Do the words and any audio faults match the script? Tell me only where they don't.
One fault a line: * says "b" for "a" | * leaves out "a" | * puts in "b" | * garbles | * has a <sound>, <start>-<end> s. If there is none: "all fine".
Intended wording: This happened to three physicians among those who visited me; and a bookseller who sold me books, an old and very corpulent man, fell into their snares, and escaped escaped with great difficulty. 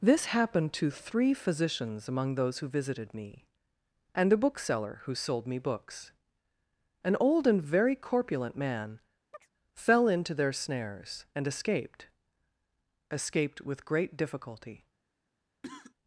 * has a chirp, 9.3-9.5 s
* has a cough, 15.6-15.9 s